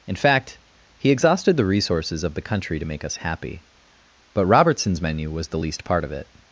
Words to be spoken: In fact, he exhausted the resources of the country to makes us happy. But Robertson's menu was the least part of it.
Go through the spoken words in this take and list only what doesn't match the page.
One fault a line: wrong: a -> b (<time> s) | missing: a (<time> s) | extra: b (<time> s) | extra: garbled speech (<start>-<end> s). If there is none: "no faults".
wrong: makes -> make (2.8 s)